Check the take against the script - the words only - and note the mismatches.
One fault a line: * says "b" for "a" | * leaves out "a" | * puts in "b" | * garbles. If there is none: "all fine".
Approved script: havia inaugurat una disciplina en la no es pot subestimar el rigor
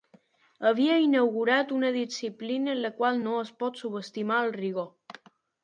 * puts in "qual"